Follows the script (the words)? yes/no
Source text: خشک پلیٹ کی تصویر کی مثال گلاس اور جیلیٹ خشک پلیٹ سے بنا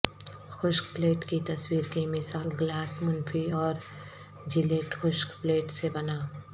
no